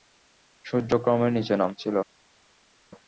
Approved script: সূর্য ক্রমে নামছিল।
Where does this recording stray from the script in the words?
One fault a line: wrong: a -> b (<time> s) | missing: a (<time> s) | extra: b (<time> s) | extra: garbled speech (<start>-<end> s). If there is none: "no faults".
extra: নিচে (1.3 s)